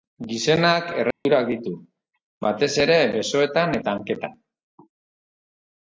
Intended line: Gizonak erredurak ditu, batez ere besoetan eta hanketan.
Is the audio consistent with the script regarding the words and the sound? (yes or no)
no